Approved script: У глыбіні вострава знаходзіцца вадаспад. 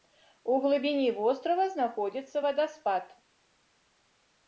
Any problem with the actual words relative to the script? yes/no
no